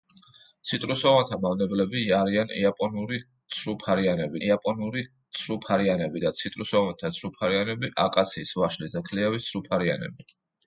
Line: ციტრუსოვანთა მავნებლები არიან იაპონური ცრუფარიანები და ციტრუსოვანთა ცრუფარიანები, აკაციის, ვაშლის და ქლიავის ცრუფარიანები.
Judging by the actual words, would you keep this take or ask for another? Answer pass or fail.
fail